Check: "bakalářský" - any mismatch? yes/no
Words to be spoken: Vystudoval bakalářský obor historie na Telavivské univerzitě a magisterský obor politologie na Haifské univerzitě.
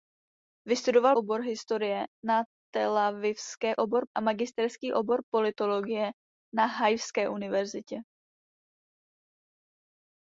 yes